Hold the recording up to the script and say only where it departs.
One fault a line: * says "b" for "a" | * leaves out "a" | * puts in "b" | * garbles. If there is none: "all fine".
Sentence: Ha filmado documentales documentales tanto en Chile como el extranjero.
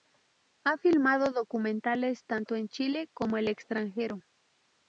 * leaves out "documentales"